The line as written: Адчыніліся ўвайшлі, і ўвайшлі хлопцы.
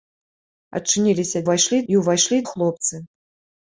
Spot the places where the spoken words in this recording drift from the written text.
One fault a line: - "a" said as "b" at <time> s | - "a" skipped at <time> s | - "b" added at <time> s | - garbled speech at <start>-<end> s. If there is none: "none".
none